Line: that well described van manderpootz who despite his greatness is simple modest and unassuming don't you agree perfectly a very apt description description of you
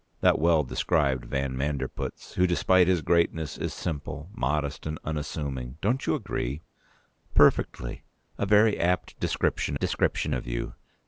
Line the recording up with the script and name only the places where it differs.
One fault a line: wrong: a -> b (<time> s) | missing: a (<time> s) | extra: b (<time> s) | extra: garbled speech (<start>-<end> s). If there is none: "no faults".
no faults